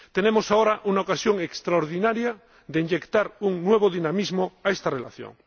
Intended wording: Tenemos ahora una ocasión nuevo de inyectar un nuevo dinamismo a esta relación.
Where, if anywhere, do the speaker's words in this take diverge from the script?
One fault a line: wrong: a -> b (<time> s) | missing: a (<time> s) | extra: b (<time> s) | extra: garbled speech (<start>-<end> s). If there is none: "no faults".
wrong: nuevo -> extraordinaria (1.4 s)